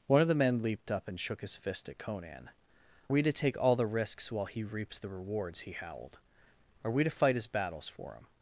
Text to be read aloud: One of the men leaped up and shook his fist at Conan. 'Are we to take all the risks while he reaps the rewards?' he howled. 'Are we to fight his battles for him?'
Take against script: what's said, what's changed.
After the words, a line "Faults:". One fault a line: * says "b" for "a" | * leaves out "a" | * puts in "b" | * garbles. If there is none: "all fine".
One of the men leaped up and shook his fist at Conan. 'We to take all the risks while he reaps the rewards?' he howled. 'Are we to fight his battles for him?'
Faults:
* leaves out "Are"